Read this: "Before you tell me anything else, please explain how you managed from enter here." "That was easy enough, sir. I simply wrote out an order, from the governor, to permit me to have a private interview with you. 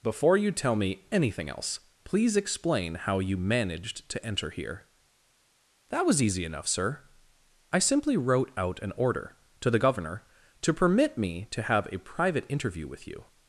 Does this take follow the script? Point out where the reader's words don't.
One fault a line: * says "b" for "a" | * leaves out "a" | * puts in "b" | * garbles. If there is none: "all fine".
* says "to" for "from"
* says "to" for "from"